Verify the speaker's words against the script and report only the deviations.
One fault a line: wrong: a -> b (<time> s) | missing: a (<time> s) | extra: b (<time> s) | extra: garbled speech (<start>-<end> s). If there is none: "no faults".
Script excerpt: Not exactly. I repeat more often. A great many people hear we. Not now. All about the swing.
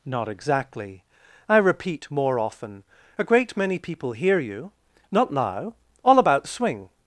wrong: we -> you (4.4 s)